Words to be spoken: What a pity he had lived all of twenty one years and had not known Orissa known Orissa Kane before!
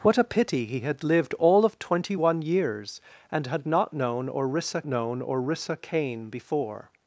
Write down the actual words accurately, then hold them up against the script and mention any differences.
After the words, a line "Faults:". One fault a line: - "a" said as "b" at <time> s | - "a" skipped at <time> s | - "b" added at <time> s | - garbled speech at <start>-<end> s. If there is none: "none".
What a pity he had lived all of twenty one years and had not known Orissa known Orissa Kane before!
Faults:
none